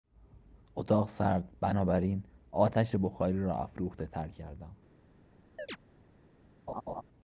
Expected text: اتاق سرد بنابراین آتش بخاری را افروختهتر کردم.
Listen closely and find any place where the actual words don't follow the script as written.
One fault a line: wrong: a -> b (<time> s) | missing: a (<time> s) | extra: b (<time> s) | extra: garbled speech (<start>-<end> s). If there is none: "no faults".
no faults